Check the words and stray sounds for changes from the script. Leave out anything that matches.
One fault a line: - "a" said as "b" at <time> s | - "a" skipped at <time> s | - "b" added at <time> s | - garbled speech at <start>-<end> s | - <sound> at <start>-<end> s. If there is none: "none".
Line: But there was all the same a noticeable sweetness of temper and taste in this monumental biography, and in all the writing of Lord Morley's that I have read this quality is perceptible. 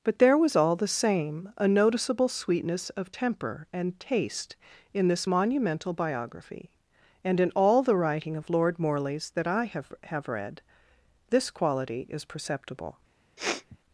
- "have" added at 10.0 s
- sniff at 13.4-13.8 s